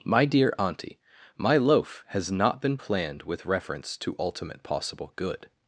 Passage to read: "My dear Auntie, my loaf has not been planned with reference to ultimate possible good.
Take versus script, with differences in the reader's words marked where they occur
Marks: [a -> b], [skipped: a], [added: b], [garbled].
"My dear Auntie, my loaf has not been planned with reference to ultimate possible good.